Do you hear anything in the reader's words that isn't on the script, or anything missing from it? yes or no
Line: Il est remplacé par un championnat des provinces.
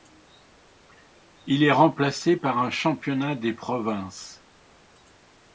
no